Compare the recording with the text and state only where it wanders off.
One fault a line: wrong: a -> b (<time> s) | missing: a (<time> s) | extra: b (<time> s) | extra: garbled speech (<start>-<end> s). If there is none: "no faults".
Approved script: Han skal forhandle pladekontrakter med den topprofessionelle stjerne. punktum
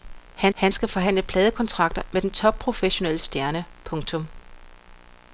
extra: han (0.5 s)